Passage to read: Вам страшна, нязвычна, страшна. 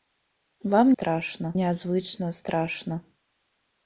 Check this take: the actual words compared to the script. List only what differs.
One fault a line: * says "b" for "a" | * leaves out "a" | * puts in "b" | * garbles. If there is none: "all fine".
all fine